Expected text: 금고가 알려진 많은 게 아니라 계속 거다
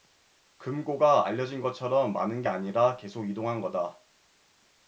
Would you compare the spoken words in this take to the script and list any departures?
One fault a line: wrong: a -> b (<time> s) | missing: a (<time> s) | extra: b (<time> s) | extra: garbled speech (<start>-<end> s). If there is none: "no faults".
extra: 것처럼 (1.6 s)
extra: 이동한 (3.3 s)